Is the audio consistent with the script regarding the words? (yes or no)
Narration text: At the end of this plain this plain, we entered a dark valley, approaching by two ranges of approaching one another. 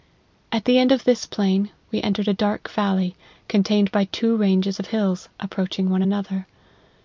no